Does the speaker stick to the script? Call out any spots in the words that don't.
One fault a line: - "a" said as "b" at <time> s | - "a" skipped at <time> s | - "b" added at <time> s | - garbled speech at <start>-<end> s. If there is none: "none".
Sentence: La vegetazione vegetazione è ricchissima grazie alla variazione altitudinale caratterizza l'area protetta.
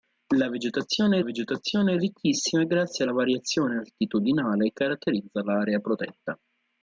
none